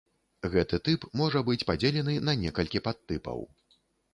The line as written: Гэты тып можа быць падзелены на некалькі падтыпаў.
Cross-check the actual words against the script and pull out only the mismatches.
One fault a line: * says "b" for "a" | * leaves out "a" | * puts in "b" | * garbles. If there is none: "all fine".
all fine